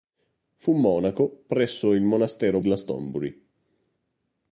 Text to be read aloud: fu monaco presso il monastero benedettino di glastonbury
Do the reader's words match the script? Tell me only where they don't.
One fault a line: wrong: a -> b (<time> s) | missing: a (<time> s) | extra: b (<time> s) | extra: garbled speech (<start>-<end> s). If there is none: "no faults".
missing: benedettino di (2.6 s)